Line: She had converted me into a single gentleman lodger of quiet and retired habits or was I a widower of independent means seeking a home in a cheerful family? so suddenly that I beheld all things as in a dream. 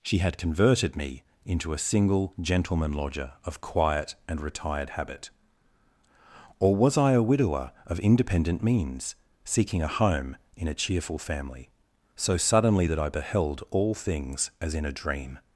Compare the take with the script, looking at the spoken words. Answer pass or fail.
fail